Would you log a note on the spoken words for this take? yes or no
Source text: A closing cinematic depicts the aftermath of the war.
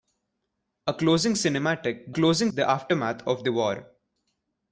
yes